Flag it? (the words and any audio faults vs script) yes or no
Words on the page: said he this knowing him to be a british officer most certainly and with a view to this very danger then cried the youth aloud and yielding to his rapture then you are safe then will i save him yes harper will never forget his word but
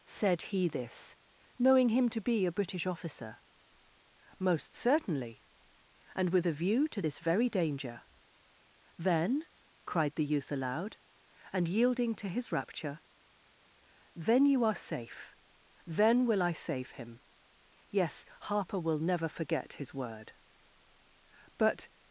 no